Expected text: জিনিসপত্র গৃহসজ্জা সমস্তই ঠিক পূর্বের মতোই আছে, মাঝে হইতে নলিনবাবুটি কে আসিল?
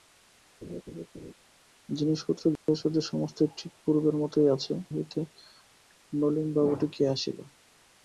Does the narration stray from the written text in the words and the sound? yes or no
yes